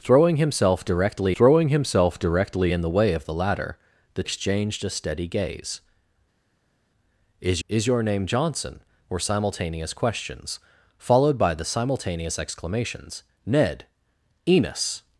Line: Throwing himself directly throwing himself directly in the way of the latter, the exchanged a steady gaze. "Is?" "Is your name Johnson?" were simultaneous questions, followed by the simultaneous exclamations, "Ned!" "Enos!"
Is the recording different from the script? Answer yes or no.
no